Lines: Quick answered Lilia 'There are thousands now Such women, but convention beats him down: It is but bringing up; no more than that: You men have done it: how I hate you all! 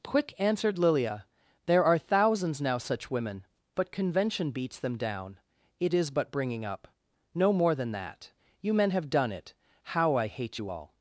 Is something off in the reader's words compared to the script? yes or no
yes